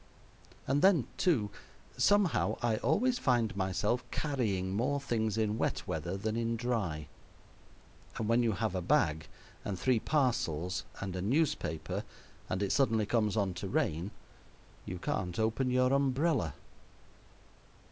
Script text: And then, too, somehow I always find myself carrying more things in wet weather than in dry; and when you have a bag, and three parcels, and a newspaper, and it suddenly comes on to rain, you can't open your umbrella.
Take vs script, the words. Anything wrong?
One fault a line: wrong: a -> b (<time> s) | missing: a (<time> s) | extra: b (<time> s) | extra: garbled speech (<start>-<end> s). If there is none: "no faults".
no faults